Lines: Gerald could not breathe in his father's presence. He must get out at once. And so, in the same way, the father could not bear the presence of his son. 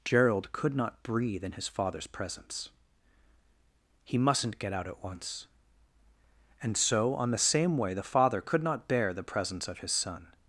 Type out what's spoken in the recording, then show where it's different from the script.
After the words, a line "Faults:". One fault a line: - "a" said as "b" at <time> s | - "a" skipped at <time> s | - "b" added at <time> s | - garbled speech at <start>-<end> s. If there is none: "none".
Gerald could not breathe in his father's presence. He mustn't get out at once. And so, on the same way, the father could not bear the presence of his son.
Faults:
- "must" said as "mustn't" at 4.2 s
- "in" said as "on" at 7.1 s